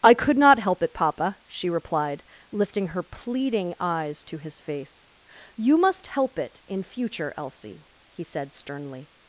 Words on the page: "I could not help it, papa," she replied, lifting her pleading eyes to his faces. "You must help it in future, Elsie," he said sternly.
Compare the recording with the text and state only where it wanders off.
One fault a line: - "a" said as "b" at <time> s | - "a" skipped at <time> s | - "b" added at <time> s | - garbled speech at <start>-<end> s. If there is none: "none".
- "faces" said as "face" at 4.6 s